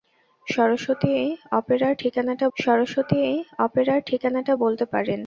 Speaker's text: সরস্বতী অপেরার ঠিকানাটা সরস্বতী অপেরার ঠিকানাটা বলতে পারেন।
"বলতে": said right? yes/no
yes